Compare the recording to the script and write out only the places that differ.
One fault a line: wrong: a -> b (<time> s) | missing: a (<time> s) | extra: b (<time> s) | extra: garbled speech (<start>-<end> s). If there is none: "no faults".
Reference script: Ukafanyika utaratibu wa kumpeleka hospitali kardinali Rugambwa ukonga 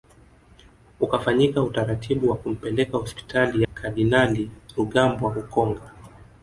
no faults